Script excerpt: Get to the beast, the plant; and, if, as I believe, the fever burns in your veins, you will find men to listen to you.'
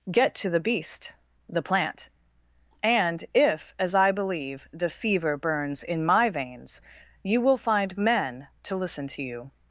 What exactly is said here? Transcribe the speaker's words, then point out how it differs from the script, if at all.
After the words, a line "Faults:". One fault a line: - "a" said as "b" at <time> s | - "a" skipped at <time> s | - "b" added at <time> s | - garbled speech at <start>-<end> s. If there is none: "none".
Get to the beast, the plant; and, if, as I believe, the fever burns in my veins, you will find men to listen to you.'
Faults:
- "your" said as "my" at 6.0 s